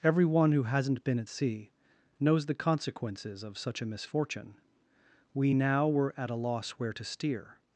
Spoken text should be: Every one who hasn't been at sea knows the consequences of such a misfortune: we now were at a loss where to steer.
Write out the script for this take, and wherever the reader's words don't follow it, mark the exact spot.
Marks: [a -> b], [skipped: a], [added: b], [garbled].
Every one who hasn't been at sea knows the consequences of such a misfortune: we now were at a loss where to steer.